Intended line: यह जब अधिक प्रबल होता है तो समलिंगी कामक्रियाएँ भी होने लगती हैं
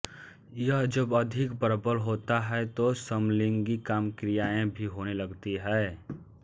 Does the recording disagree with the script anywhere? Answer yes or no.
no